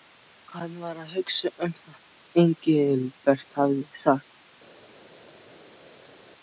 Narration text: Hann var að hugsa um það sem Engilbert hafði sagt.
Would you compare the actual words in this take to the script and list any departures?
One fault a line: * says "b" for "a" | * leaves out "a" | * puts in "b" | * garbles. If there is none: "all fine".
all fine